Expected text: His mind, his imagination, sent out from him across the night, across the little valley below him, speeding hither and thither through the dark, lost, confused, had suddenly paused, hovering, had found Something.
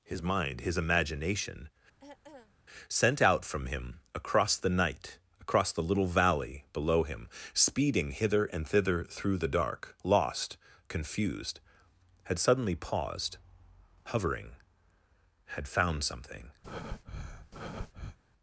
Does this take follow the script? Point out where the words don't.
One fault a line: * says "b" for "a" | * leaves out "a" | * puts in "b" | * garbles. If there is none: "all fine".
all fine